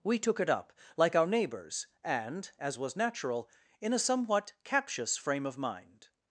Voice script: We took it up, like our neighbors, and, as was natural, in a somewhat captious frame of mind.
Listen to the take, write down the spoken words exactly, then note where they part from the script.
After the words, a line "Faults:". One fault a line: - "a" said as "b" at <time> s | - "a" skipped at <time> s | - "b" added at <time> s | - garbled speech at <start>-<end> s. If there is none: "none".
We took it up, like our neighbors, and, as was natural, in a somewhat captious frame of mind.
Faults:
none